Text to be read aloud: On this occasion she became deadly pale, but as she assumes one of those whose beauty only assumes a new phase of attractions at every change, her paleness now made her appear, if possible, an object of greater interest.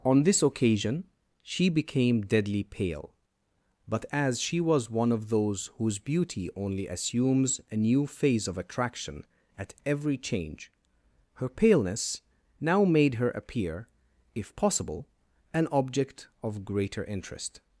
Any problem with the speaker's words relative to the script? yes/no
yes